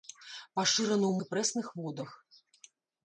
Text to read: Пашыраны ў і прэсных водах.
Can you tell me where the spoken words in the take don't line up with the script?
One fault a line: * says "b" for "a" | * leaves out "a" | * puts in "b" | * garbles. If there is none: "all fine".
all fine